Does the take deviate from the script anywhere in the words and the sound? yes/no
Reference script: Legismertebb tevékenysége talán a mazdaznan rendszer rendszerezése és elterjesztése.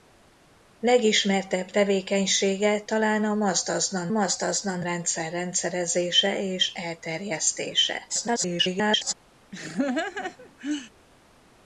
yes